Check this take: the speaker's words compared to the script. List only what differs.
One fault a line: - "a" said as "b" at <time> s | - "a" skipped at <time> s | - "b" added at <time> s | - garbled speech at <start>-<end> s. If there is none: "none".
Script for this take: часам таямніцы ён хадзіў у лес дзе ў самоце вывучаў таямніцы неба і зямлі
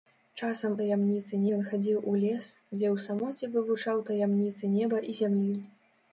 none